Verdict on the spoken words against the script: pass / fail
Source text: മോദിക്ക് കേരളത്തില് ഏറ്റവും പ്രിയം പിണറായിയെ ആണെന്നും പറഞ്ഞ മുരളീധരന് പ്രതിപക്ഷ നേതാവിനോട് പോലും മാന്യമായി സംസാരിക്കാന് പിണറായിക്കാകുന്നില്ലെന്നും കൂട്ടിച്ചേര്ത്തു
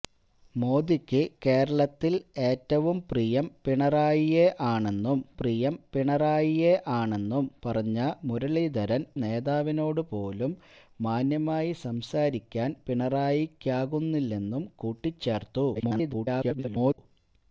fail